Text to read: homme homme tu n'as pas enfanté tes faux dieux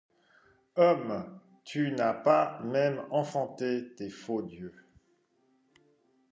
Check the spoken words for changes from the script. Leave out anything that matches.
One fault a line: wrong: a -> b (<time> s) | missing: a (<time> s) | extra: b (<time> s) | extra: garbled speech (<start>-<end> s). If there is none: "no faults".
missing: homme (1.4 s)
extra: même (2.6 s)